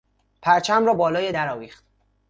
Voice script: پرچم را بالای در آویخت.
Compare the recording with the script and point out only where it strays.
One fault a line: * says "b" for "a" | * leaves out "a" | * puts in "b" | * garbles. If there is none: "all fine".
all fine